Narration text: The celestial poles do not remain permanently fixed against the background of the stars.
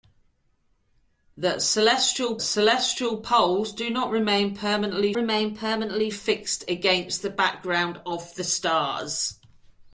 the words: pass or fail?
fail